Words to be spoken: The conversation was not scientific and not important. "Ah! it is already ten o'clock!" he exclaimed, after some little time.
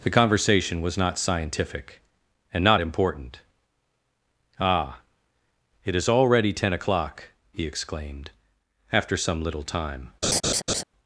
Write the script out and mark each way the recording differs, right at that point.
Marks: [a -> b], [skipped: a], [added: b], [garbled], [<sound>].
The conversation was not scientific and not important. "Ah! it is already ten o'clock!" he exclaimed, after some little time. [laugh]